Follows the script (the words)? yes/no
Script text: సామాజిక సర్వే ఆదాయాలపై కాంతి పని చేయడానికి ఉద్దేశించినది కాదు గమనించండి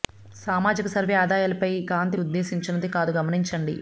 no